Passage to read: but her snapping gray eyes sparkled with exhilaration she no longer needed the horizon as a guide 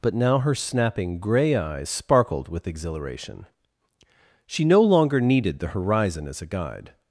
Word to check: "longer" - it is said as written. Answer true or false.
true